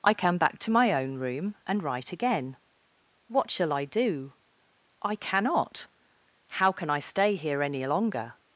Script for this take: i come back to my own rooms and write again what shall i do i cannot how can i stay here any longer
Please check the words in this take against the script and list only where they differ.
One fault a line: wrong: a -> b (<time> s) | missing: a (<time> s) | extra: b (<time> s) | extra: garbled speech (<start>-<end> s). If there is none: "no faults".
wrong: rooms -> room (1.1 s)